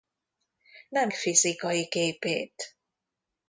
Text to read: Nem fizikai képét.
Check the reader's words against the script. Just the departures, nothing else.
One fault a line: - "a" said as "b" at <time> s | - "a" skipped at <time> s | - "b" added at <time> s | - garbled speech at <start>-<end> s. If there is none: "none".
none